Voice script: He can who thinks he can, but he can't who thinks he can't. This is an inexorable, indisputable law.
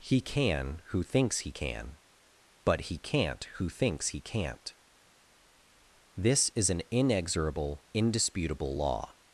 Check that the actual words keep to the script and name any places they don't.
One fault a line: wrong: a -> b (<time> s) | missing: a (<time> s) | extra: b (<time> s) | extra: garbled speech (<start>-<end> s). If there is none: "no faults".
no faults